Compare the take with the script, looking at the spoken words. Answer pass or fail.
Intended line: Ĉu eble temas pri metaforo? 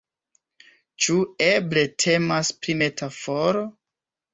pass